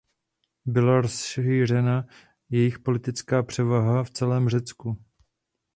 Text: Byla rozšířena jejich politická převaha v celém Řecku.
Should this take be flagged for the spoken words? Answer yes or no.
no